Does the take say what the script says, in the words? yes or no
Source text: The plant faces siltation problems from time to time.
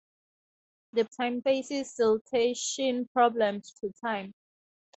no